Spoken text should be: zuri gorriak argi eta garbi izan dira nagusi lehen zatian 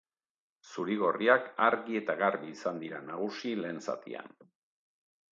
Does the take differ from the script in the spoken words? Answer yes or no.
no